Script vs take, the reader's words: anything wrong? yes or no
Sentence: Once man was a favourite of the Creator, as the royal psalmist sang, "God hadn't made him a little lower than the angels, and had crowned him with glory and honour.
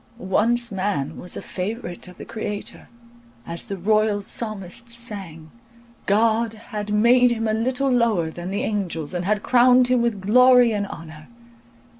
yes